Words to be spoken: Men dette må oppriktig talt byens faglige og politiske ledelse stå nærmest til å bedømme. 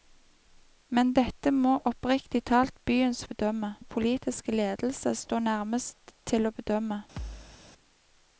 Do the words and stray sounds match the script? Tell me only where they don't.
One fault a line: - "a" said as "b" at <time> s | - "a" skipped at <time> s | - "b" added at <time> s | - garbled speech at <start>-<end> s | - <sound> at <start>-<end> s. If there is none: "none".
- "faglige" said as "bedømme" at 3.3 s
- thud at 7.2-7.6 s